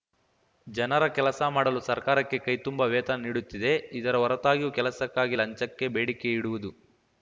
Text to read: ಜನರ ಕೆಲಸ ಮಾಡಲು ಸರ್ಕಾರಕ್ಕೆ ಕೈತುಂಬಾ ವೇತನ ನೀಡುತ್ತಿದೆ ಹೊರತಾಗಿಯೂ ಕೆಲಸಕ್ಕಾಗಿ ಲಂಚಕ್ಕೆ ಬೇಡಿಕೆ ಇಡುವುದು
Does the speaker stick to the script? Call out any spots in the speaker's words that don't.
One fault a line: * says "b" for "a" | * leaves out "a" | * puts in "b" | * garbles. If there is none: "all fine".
* puts in "ಇದರ"